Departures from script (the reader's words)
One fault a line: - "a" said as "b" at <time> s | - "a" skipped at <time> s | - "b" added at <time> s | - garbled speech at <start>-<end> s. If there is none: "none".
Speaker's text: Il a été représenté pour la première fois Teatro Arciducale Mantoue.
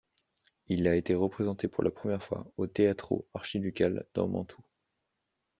- "au" added at 2.6 s
- "dans" added at 4.1 s